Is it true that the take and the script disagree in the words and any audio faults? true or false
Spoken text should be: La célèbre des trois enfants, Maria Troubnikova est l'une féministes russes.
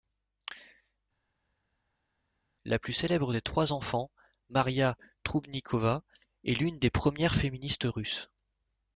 true